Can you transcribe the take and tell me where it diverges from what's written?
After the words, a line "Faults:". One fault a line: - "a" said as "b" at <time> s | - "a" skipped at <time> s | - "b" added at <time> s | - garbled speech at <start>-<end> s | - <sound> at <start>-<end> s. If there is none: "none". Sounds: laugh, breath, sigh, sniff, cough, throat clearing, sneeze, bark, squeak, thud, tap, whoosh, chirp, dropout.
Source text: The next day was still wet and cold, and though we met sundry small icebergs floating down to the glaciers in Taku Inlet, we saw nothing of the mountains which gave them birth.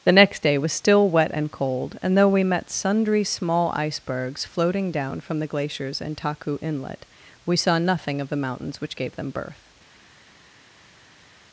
The next day was still wet and cold, and though we met sundry small icebergs floating down from the glaciers in Taku Inlet, we saw nothing of the mountains which gave them birth.
Faults:
- "to" said as "from" at 5.2 s